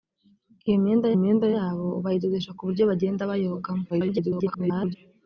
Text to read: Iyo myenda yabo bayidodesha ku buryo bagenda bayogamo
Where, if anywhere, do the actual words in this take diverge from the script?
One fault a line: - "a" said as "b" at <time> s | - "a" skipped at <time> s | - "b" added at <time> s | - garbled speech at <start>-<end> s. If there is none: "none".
- "myenda" added at 1.2 s
- garbled speech at 3.9-5.0 s